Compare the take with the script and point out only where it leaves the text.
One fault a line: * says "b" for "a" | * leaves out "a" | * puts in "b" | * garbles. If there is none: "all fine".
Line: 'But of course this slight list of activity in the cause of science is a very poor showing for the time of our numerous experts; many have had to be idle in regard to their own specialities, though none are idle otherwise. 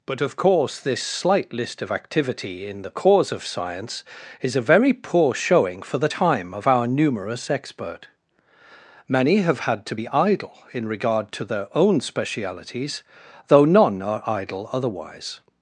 * says "expert" for "experts"